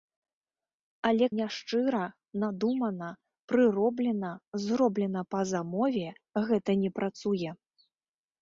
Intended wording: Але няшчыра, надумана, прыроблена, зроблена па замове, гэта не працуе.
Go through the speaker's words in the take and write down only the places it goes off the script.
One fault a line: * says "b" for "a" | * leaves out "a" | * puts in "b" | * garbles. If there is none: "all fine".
all fine